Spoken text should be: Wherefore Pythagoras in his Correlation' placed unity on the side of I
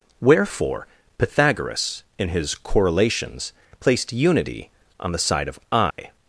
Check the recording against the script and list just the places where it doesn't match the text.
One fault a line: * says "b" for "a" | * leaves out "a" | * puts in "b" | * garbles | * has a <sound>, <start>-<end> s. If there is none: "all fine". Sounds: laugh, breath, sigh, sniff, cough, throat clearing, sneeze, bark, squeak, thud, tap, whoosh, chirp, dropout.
* says "Correlations" for "Correlation"
* has a dropout, 5.9-6.0 s